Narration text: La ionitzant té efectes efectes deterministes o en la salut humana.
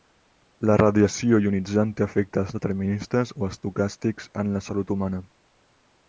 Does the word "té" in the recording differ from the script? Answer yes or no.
no